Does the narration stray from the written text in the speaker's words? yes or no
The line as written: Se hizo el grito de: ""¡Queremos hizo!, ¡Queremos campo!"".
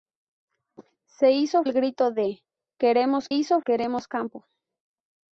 no